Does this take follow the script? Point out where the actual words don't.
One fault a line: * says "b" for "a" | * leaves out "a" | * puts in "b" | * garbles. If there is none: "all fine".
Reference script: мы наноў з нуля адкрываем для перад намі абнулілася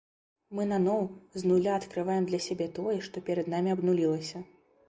* puts in "сябе тое што"